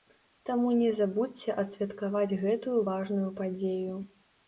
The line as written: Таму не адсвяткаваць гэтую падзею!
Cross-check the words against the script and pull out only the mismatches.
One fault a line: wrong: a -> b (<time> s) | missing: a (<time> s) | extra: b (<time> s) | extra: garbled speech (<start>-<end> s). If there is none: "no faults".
extra: забудзьце (1.0 s)
extra: важную (2.9 s)